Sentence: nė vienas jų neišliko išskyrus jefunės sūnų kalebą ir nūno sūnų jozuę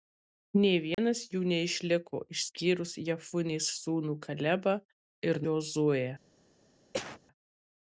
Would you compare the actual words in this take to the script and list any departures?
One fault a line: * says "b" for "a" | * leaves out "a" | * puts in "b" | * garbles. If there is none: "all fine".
* leaves out "nūno sūnų"